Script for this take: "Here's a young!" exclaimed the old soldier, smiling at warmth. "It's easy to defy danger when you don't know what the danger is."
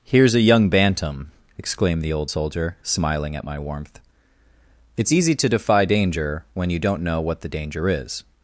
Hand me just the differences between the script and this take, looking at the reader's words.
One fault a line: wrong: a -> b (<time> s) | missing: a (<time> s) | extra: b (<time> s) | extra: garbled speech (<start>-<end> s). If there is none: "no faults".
extra: bantam (0.7 s)
extra: my (3.4 s)